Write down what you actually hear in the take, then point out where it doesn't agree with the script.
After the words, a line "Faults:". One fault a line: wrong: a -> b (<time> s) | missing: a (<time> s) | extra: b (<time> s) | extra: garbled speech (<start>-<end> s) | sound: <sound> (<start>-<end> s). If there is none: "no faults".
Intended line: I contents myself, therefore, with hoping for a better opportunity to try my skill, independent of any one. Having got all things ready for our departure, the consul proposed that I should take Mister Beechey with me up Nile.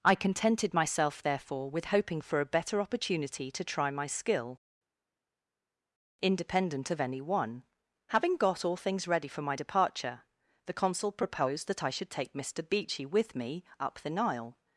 I contented myself, therefore, with hoping for a better opportunity to try my skill, independent of any one. Having got all things ready for my departure, the consul proposed that I should take Mister Beechey with me up the Nile.
Faults:
wrong: contents -> contented (0.1 s)
wrong: our -> my (9.4 s)
extra: the (14.0 s)